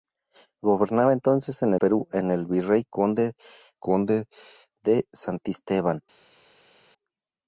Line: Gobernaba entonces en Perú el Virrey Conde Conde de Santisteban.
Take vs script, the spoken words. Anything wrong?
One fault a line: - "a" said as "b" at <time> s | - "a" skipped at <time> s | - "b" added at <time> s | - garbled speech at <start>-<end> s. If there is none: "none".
none